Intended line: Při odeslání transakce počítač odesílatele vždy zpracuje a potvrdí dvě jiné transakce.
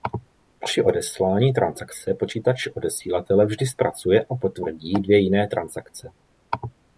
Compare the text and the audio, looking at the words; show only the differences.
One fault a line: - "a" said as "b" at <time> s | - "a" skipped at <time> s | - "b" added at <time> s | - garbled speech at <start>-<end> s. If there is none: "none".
none